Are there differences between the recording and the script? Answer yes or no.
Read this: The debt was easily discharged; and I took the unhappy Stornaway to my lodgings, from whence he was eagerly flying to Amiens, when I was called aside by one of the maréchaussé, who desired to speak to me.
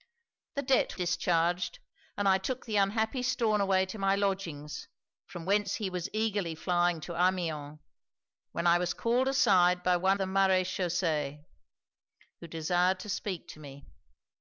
yes